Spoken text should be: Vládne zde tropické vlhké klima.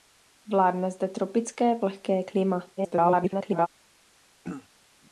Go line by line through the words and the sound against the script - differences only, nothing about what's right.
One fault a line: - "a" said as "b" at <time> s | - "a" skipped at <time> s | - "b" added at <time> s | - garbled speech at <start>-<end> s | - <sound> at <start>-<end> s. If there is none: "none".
- garbled speech at 2.8-3.7 s
- throat clearing at 4.4-4.7 s